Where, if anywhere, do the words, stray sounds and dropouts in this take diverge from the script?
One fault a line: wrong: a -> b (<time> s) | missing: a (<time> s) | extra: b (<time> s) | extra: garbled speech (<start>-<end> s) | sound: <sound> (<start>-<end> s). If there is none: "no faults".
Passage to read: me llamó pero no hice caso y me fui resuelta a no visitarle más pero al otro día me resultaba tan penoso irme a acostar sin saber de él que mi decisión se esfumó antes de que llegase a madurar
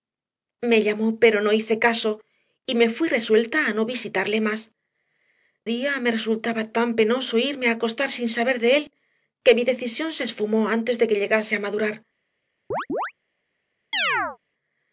missing: pero al otro (4.7 s)
sound: chirp (12.7-13.1 s)
sound: chirp (13.9-14.4 s)